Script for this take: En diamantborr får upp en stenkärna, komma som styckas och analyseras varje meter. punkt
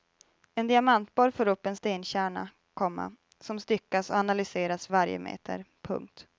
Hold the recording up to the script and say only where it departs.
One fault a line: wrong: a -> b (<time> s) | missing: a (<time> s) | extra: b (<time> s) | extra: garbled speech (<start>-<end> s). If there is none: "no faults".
no faults